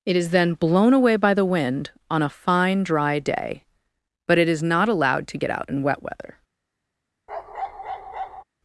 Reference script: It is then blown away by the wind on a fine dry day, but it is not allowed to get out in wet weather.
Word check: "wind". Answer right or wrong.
right